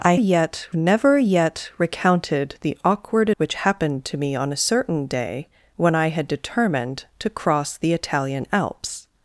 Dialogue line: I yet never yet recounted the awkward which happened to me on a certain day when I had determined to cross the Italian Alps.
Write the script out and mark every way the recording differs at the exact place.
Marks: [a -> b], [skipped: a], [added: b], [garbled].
I yet never yet recounted the awkward which happened to me on a certain day when I had determined to cross the Italian Alps.